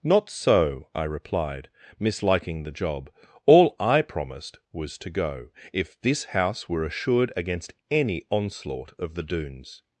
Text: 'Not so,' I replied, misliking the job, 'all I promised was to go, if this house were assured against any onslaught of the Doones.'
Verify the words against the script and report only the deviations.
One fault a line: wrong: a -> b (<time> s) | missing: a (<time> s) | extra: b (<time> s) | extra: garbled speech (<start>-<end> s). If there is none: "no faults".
no faults